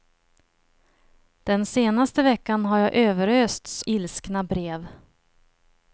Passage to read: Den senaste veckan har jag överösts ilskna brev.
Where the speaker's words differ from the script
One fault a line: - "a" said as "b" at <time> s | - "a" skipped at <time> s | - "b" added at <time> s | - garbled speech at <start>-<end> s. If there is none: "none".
none